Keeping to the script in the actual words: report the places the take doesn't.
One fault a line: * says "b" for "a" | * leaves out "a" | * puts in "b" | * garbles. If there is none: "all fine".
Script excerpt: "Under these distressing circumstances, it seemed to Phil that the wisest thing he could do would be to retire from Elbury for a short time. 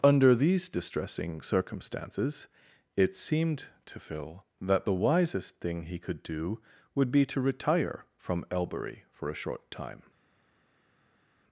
all fine